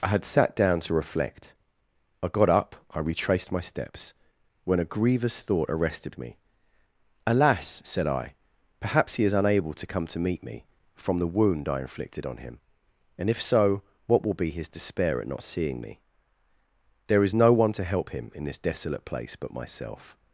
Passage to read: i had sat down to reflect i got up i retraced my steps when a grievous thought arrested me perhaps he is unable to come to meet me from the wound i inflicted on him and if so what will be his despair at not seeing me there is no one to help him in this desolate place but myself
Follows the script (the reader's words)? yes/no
no